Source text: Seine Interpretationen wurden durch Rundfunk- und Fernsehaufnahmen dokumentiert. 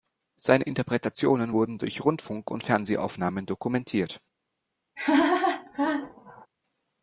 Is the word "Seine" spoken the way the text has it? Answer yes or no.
yes